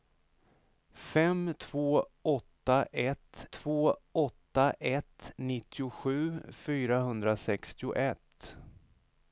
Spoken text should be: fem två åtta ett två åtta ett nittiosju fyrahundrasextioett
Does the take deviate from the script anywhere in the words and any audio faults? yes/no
no